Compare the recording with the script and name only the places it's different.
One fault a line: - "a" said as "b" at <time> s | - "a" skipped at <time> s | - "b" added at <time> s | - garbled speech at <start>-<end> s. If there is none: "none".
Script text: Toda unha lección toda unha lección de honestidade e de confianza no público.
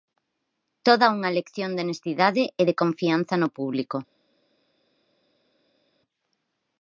- "toda unha lección" skipped at 1.7 s